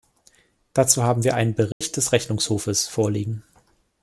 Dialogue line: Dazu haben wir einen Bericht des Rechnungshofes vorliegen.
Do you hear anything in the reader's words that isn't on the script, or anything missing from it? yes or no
no